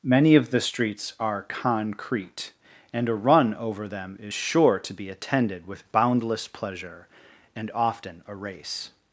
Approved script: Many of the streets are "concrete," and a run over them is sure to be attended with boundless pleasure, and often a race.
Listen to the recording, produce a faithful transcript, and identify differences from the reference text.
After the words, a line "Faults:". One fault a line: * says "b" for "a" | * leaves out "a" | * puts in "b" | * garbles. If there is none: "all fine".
Many of the streets are "concrete," and a run over them is sure to be attended with boundless pleasure, and often a race.
Faults:
all fine